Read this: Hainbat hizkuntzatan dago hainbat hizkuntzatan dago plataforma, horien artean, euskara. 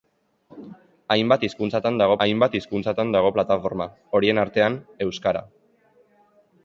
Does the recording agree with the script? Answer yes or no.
yes